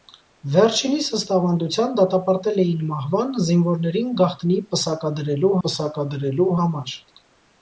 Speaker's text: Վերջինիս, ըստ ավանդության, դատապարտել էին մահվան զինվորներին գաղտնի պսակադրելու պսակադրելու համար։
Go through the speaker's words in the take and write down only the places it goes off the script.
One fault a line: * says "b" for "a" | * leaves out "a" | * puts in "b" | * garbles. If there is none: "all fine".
all fine